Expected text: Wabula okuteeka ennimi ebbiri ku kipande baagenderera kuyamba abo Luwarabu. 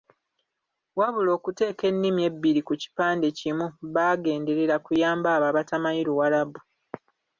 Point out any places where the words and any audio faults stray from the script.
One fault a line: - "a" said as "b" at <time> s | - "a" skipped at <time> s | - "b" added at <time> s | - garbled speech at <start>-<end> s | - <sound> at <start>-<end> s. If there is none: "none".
- "kimu" added at 3.4 s
- "abatamanyi" added at 5.5 s